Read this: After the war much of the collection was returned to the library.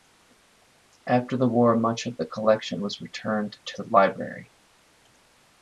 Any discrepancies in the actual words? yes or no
no